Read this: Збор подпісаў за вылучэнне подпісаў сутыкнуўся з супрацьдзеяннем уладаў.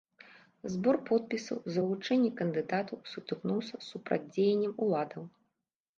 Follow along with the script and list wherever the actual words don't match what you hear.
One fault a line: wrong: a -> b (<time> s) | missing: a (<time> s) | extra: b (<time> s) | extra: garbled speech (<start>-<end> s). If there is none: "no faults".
wrong: подпісаў -> кандыдатаў (2.4 s)